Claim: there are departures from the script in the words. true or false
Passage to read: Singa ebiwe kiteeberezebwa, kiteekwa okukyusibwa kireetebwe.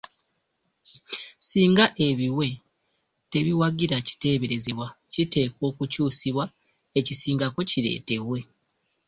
true